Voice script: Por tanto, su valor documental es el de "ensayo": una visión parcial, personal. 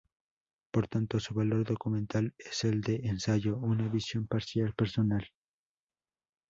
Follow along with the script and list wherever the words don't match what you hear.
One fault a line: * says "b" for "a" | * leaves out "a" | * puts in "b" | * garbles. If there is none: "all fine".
all fine